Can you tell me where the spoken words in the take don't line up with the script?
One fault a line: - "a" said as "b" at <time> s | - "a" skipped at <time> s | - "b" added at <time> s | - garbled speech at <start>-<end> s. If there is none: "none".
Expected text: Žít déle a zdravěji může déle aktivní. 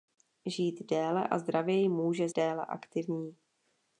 none